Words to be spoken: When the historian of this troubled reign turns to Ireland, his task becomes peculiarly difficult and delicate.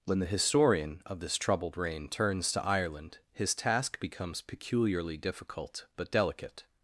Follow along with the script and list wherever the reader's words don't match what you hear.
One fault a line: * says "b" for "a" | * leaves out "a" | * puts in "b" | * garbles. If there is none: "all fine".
* says "but" for "and"